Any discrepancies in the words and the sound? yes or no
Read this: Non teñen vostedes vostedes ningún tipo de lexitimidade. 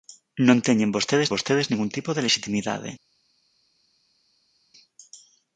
no